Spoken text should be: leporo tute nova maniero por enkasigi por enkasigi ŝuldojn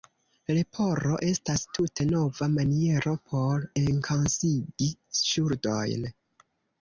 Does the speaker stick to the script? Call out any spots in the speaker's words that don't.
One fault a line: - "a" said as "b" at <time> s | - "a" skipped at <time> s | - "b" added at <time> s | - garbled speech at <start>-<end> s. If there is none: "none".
- "estas" added at 1.3 s
- "por enkasigi" skipped at 4.9 s